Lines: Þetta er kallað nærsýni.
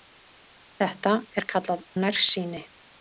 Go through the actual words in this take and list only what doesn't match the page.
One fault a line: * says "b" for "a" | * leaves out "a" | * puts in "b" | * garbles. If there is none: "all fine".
all fine